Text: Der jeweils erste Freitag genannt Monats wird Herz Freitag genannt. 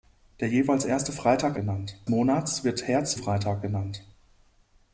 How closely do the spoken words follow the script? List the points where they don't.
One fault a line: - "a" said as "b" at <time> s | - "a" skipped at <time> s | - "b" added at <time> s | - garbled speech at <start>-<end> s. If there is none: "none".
none